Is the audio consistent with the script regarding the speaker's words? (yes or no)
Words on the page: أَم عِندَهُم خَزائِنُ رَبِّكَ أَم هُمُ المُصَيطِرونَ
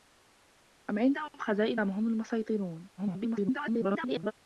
no